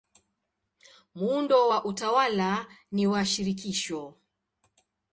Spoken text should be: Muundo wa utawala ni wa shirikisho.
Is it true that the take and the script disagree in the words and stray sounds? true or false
false